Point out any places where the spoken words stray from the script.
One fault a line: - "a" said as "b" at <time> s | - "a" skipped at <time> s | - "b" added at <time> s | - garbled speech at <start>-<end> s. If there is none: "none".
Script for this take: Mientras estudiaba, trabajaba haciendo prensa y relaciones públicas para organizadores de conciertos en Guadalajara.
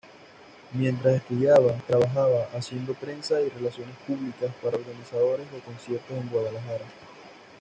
none